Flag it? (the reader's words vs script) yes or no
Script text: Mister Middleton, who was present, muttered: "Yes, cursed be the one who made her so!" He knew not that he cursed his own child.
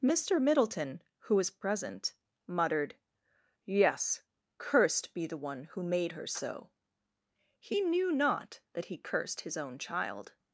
no